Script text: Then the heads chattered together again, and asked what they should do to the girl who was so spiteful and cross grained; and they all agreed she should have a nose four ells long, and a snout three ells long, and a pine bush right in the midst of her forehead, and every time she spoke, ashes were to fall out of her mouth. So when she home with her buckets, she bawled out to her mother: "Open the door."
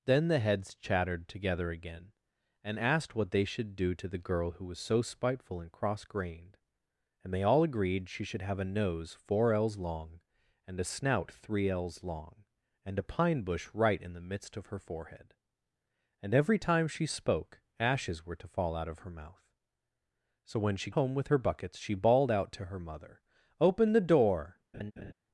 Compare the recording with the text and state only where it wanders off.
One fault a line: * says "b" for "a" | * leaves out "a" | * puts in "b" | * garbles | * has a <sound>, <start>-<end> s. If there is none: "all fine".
* has a laugh, 24.7-25.1 s